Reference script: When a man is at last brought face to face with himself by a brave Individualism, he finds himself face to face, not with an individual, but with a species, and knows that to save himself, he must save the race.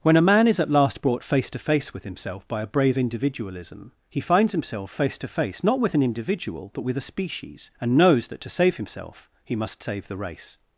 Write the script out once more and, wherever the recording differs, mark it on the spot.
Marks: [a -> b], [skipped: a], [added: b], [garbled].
When a man is at last brought face to face with himself by a brave Individualism, he finds himself face to face, not with an individual, but with a species, and knows that to save himself, he must save the race.